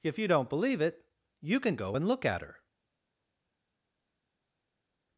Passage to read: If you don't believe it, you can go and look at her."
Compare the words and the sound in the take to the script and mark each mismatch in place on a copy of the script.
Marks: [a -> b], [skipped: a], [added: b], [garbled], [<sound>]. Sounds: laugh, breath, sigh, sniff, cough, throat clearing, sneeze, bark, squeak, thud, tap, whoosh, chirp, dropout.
If you don't believe it, you can go and look at her."